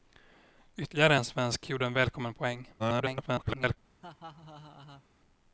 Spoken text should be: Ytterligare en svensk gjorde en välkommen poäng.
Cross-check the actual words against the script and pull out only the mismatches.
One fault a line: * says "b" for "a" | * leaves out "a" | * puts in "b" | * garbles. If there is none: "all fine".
* garbles